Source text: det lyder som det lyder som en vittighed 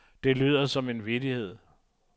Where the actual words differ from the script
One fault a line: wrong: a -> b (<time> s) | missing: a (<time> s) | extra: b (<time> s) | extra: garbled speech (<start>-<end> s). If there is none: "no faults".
missing: det lyder som (0.9 s)